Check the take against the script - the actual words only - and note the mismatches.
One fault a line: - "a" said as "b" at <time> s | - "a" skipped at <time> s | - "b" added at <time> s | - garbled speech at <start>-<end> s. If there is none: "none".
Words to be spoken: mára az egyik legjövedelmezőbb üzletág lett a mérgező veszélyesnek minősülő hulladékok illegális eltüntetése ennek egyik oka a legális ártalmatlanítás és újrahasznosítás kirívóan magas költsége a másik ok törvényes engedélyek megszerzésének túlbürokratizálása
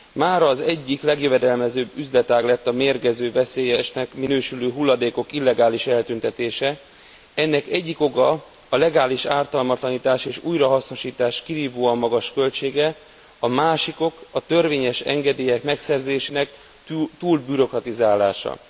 - "a" added at 14.3 s